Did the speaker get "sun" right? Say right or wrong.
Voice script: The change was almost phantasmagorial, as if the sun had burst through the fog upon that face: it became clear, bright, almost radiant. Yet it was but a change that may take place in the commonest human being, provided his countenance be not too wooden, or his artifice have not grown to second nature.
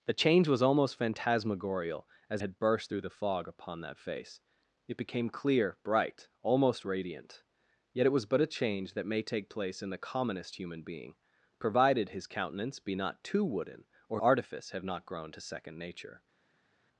wrong